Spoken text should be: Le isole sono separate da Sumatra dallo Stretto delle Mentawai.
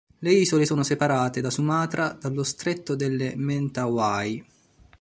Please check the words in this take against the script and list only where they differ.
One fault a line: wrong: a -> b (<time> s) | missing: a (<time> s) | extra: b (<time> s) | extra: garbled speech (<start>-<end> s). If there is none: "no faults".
no faults